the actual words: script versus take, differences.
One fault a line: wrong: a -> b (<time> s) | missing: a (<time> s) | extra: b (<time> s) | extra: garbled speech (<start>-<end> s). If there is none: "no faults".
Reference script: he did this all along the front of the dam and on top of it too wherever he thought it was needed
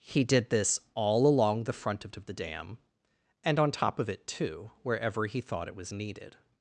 extra: of (2.2 s)